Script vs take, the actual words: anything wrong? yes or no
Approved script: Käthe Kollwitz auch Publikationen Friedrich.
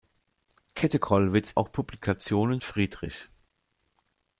no